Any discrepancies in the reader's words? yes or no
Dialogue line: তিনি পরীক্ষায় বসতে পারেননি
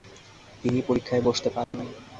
no